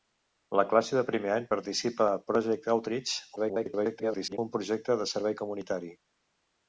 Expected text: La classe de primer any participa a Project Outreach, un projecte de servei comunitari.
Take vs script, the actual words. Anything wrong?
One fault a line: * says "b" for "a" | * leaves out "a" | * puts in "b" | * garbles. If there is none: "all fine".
* garbles